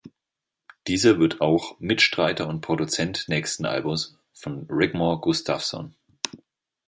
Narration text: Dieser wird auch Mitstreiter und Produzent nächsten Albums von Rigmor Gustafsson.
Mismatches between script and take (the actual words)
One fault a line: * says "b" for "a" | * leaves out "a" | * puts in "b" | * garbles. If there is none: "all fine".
all fine